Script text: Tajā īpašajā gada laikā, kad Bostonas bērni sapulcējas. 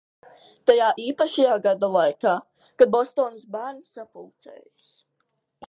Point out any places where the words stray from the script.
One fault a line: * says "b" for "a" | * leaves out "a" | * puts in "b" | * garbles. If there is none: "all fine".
all fine